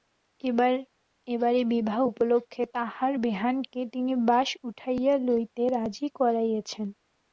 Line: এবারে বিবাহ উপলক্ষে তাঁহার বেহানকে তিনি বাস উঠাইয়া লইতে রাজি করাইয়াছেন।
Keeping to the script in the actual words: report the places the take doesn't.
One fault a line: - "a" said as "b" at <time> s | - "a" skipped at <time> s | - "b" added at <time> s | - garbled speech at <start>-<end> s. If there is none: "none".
none